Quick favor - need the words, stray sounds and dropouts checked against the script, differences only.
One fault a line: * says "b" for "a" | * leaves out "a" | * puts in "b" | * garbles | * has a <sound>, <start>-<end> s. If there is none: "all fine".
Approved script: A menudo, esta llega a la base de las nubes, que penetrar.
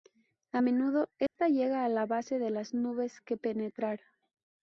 * has a dropout, 1.3-1.4 s